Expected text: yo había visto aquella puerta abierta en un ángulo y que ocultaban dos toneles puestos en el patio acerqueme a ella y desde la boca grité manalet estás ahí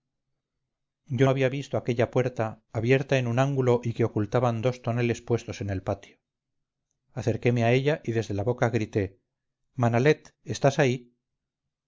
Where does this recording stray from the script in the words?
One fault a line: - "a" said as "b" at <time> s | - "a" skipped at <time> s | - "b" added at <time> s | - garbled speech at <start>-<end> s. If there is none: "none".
none